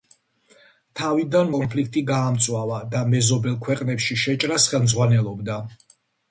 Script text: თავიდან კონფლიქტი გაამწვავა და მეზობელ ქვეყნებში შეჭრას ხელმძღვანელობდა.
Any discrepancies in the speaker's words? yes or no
no